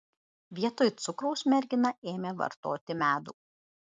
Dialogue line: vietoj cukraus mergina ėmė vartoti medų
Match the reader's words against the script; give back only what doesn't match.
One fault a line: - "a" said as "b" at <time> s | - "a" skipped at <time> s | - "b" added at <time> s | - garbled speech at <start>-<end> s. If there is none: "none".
none